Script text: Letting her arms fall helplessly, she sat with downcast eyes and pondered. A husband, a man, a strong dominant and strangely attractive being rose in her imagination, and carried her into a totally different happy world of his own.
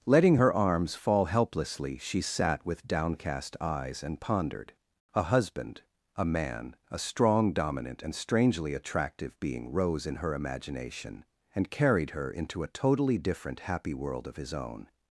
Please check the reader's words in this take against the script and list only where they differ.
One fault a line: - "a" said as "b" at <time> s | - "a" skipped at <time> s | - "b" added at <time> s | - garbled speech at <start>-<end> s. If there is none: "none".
none